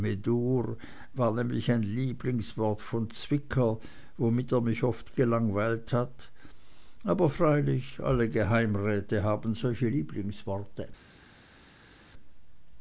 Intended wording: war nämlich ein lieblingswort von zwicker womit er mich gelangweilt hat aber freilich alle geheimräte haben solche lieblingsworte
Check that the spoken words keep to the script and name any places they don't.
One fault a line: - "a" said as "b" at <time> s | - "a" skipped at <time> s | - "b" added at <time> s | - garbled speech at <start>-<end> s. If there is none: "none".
- "oft" added at 4.8 s